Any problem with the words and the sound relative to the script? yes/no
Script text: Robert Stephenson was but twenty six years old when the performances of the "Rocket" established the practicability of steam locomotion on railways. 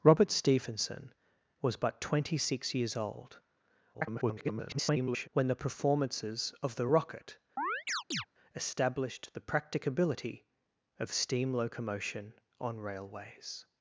yes